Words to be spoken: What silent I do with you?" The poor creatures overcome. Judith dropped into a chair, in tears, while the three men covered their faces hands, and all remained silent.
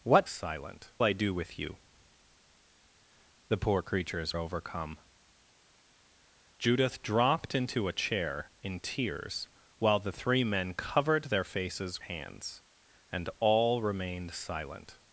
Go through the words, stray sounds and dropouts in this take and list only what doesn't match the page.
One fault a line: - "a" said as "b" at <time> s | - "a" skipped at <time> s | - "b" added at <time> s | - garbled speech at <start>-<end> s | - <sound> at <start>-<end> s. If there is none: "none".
none